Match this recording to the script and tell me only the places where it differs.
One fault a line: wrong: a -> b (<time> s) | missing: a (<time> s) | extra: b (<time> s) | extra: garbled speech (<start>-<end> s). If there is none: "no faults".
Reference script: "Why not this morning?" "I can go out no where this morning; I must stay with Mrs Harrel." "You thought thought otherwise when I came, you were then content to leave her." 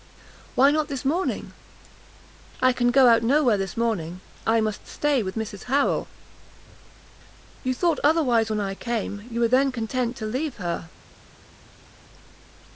missing: thought (8.0 s)